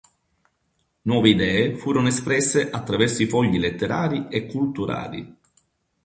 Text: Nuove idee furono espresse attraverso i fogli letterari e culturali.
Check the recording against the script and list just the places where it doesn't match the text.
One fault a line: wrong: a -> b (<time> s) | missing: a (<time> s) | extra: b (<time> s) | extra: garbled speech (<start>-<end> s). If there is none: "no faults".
no faults